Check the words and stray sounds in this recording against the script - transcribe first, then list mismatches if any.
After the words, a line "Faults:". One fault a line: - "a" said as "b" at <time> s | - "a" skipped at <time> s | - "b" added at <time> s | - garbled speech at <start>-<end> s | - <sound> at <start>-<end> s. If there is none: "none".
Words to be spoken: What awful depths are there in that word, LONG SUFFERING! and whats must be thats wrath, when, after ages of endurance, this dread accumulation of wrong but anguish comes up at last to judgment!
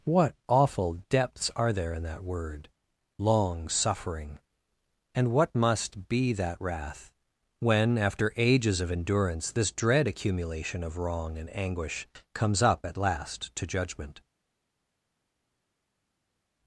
What awful depths are there in that word, LONG SUFFERING! and what must be that wrath, when, after ages of endurance, this dread accumulation of wrong and anguish comes up at last to judgment!
Faults:
- "whats" said as "what" at 5.3 s
- "thats" said as "that" at 6.3 s
- "but" said as "and" at 11.4 s